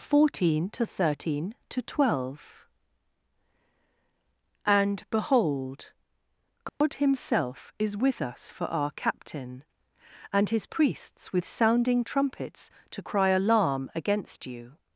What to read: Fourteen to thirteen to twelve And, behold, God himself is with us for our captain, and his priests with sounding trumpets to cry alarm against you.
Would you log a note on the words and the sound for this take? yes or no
yes